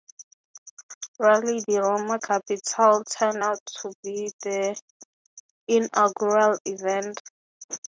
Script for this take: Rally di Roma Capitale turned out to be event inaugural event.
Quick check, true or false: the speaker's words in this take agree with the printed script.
false